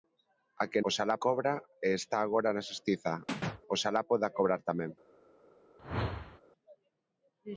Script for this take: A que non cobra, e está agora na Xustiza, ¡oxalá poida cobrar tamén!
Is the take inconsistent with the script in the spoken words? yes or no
yes